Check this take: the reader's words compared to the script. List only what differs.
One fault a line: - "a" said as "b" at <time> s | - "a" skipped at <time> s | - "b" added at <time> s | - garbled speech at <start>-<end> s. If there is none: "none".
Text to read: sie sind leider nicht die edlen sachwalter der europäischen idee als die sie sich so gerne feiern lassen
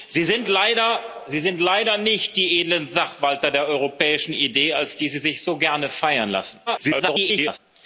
- garbled speech at 6.7-7.6 s